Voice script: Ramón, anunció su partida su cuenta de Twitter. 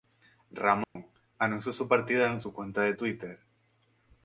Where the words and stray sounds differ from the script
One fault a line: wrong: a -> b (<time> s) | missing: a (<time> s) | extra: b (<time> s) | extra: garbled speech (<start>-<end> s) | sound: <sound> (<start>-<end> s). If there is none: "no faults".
sound: dropout (0.8-1.0 s)
extra: en (2.3 s)